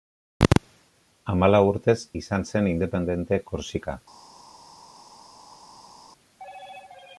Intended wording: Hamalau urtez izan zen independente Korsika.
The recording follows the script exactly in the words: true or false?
true